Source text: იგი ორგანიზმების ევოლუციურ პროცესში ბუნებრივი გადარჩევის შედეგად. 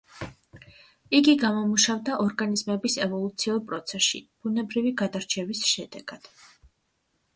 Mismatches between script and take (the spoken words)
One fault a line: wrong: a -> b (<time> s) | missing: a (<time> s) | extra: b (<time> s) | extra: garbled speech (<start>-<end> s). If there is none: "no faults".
extra: გამომუშავდა (1.4 s)